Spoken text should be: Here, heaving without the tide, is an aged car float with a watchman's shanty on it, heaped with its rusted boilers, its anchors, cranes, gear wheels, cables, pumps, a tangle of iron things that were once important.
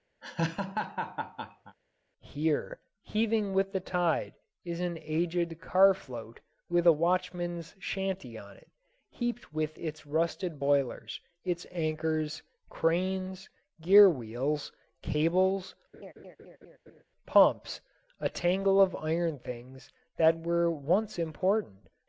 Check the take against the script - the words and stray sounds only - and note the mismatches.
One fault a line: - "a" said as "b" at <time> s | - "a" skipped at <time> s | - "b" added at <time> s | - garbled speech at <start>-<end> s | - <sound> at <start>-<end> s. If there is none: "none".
- laugh at 0.2-1.8 s
- "without" said as "with" at 3.5 s
- laugh at 15.9-17.0 s